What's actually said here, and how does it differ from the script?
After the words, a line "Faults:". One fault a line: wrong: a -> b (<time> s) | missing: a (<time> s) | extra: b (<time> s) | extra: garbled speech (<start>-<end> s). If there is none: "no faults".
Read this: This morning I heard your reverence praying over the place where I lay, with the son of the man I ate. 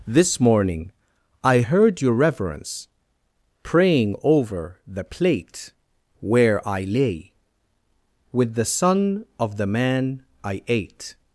This morning I heard your reverence praying over the plate where I lay, with the son of the man I ate.
Faults:
wrong: place -> plate (5.0 s)